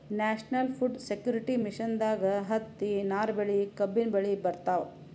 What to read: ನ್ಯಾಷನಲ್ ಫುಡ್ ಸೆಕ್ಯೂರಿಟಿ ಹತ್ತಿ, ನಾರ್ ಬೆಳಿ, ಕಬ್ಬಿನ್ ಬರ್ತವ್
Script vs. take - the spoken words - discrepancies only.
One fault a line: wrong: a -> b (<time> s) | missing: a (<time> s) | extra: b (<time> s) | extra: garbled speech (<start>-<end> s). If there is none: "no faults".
extra: ಮಿಷನ್ದಾಗ್ (1.6 s)
extra: ಬೆಳಿ (4.1 s)